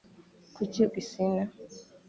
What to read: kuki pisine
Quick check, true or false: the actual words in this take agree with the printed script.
true